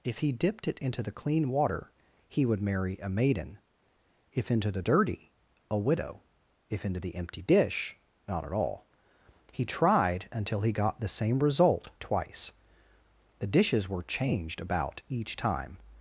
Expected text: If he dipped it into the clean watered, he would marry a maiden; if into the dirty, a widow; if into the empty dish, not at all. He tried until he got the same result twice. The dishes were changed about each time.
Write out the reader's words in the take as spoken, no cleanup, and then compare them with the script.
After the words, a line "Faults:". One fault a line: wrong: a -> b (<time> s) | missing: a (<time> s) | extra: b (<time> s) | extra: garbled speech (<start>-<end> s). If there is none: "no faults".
If he dipped it into the clean water, he would marry a maiden; if into the dirty, a widow; if into the empty dish, not at all. He tried until he got the same result twice. The dishes were changed about each time.
Faults:
wrong: watered -> water (1.5 s)